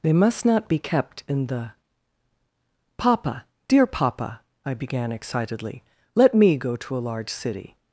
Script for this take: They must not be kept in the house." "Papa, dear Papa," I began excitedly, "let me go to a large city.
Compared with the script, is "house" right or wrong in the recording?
wrong